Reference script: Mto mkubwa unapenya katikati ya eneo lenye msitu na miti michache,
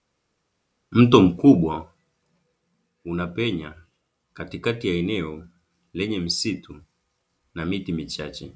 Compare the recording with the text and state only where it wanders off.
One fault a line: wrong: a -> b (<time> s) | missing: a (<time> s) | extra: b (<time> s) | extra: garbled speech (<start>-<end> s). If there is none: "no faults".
no faults